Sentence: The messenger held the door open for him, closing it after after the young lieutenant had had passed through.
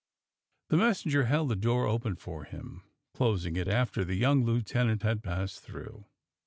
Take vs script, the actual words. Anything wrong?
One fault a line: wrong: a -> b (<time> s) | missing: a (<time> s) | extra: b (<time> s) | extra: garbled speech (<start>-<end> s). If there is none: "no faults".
missing: after (4.1 s)
missing: had (5.2 s)